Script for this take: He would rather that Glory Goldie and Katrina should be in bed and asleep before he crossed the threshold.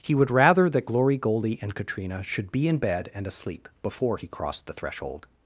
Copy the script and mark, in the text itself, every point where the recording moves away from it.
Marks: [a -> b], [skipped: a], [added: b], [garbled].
He would rather that Glory Goldie and Katrina should be in bed and asleep before he crossed the threshold.